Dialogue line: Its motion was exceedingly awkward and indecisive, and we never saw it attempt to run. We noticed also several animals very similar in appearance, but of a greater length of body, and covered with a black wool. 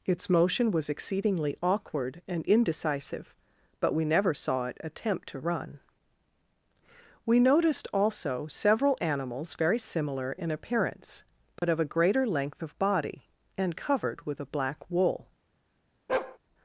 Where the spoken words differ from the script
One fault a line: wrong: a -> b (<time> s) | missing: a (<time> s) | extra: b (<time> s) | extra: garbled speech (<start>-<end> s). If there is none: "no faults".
wrong: and -> but (3.8 s)